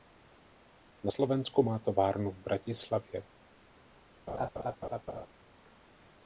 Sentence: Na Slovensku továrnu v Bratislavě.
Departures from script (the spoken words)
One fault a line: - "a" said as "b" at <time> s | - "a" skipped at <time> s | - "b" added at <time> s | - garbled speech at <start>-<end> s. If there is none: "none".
- "má" added at 1.6 s